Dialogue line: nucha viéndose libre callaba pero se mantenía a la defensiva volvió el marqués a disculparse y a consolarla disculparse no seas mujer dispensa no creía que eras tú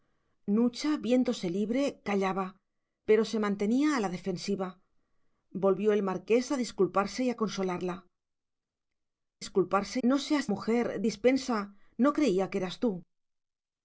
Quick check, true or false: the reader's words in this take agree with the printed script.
true